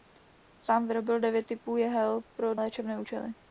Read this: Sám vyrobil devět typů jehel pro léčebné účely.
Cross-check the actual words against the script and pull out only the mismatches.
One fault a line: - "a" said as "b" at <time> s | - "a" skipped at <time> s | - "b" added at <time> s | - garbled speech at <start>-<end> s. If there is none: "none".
none